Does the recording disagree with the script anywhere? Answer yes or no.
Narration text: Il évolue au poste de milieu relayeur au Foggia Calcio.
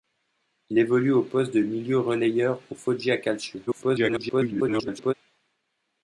yes